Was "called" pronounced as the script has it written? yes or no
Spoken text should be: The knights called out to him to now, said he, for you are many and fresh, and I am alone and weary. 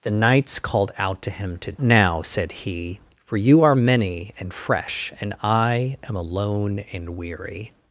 yes